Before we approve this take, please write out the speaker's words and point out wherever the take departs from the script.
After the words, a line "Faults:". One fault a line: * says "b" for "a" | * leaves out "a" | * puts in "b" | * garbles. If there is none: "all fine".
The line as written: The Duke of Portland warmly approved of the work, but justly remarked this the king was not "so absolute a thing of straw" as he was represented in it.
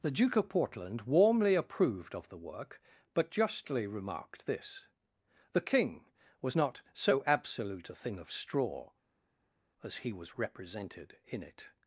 The Duke of Portland warmly approved of the work, but justly remarked this the king was not "so absolute a thing of straw" as he was represented in it.
Faults:
all fine